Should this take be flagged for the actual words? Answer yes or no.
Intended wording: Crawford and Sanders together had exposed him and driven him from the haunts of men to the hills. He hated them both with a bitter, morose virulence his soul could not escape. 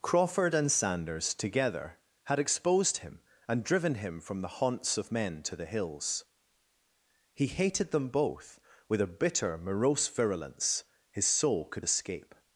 yes